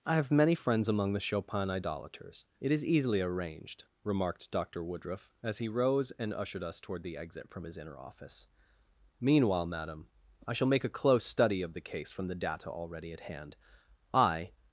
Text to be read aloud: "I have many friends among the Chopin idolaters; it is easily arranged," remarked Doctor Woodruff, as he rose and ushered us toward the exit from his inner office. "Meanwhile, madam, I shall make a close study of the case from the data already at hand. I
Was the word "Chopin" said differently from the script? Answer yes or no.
no